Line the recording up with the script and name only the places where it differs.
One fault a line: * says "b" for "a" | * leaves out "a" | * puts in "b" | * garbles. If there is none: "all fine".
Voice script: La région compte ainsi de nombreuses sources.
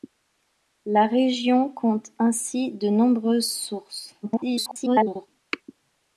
* garbles